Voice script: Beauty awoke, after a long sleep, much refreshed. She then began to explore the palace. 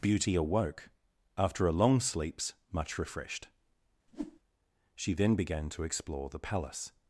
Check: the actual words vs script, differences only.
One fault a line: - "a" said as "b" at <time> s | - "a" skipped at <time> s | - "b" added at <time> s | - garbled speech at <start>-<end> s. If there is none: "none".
- "sleep" said as "sleeps" at 2.0 s